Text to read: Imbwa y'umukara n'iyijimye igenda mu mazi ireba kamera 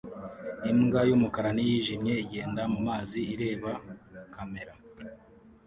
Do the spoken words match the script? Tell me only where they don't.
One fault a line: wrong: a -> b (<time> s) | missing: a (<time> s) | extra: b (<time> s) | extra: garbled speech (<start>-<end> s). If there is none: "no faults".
no faults